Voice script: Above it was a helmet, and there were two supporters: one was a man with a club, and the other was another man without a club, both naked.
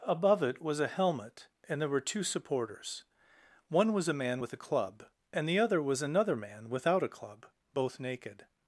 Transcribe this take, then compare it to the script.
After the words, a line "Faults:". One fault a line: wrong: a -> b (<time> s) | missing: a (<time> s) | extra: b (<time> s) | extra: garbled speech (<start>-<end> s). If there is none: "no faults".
Above it was a helmet, and there were two supporters: one was a man with a club, and the other was another man without a club, both naked.
Faults:
no faults